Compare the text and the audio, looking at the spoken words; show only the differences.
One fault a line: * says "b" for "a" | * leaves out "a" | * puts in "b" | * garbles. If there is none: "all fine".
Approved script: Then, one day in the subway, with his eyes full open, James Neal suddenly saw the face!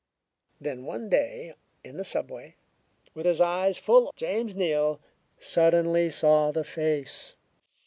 * leaves out "open"